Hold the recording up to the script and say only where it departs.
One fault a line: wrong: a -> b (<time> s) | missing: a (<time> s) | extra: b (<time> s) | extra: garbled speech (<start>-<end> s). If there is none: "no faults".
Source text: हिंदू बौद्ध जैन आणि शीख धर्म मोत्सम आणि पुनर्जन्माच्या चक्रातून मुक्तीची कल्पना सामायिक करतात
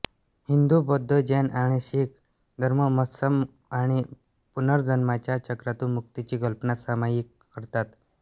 no faults